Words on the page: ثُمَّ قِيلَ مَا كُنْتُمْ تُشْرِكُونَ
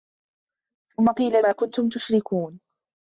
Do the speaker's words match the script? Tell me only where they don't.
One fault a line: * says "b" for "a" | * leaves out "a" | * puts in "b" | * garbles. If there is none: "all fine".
all fine